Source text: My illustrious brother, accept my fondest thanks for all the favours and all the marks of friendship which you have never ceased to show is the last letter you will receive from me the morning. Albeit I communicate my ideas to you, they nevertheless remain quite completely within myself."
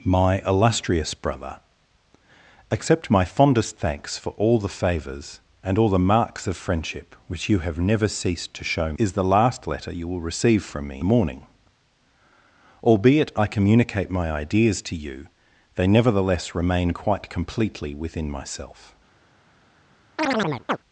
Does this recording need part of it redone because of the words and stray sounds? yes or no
yes